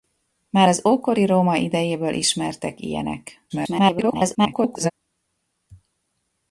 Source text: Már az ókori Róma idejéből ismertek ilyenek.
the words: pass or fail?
fail